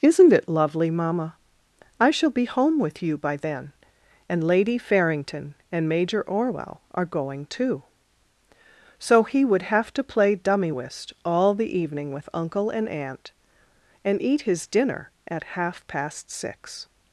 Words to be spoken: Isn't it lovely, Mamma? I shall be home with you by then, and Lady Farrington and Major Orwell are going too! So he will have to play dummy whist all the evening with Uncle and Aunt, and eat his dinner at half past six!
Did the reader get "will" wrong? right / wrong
wrong